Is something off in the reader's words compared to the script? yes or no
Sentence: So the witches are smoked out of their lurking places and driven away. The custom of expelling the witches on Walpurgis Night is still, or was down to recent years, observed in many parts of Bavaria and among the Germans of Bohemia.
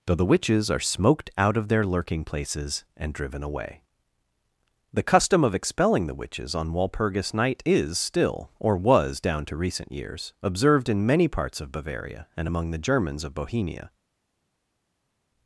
yes